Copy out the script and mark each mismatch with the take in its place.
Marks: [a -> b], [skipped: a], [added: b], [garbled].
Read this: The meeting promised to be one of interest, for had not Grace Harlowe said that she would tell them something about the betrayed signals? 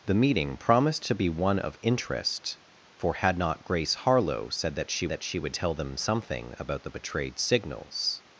The meeting promised to be one of interest, for had not Grace Harlowe said that she [added: that she] would tell them something about the betrayed signals?